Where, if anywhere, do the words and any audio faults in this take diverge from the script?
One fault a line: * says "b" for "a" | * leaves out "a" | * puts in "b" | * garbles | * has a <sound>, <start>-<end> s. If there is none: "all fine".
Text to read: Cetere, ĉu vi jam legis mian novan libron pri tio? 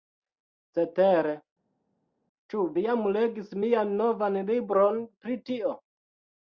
all fine